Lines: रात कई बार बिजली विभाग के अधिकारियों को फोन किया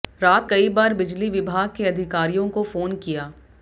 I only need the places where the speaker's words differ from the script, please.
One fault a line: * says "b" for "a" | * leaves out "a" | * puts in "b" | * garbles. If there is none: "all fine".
all fine